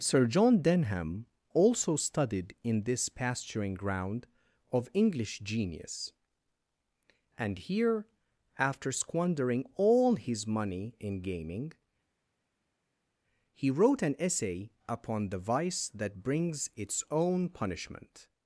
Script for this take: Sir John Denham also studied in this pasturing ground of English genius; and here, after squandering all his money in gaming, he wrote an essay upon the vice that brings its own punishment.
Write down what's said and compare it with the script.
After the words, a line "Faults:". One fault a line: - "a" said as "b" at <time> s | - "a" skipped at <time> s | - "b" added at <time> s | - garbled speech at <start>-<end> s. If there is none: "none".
Sir John Denham also studied in this pasturing ground of English genius; and here, after squandering all his money in gaming, he wrote an essay upon the vice that brings its own punishment.
Faults:
none